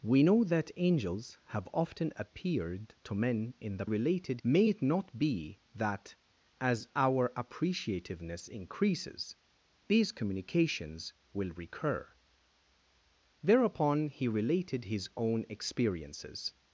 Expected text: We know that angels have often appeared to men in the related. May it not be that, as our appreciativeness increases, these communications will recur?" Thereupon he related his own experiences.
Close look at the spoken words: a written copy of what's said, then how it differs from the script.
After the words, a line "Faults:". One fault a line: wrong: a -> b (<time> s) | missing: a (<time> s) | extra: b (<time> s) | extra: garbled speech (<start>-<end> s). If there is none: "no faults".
We know that angels have often appeared to men in the related. May it not be that, as our appreciativeness increases, these communications will recur?" Thereupon he related his own experiences.
Faults:
no faults